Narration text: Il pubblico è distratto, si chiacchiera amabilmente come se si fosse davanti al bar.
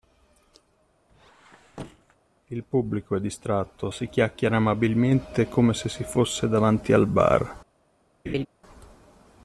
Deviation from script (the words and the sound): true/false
true